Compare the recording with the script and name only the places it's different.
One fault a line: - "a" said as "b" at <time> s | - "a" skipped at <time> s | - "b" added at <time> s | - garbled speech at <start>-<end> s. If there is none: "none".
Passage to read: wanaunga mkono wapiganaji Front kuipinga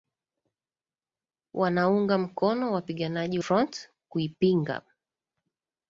none